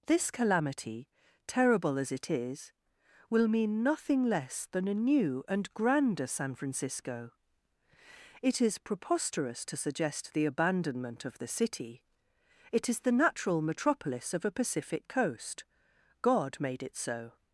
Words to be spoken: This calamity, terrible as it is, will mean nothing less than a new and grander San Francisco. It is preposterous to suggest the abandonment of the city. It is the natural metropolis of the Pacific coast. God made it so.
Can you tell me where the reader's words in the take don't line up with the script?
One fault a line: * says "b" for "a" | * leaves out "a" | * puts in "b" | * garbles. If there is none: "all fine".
* says "a" for "the"